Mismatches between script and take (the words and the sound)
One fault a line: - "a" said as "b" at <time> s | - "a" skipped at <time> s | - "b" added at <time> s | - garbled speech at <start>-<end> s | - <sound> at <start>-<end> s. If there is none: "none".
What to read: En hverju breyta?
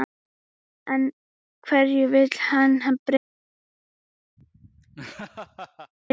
- "vill hann" added at 2.1 s
- laugh at 4.4-5.9 s